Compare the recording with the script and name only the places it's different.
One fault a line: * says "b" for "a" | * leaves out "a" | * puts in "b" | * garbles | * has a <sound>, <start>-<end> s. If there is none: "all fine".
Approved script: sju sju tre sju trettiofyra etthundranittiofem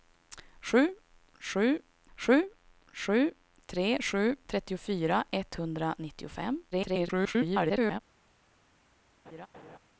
* puts in "sju sju"
* garbles
* has a laugh, 9.3-9.8 s